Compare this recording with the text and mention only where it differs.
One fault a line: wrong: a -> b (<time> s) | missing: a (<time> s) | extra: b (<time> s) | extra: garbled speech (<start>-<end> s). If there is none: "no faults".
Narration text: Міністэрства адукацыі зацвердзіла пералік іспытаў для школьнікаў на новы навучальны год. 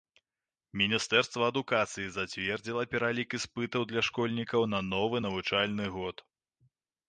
no faults